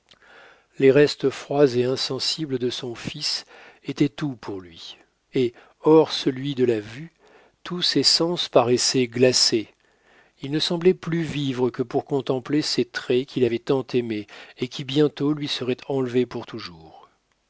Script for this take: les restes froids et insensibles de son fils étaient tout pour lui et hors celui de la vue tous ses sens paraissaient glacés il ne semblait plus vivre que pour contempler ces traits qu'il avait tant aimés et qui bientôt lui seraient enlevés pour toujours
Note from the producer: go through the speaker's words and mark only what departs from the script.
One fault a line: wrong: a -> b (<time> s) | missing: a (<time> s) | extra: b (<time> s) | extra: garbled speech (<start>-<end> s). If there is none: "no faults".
no faults